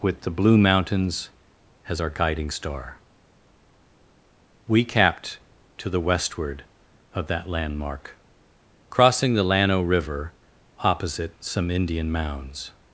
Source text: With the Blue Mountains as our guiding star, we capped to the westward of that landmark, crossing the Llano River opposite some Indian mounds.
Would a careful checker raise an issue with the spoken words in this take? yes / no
no